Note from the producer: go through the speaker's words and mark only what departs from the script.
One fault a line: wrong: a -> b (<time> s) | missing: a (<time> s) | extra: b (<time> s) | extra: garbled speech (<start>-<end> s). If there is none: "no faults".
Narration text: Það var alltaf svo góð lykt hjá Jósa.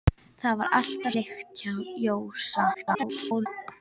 missing: svo góð (1.1 s)
extra: garbled speech (2.7-3.5 s)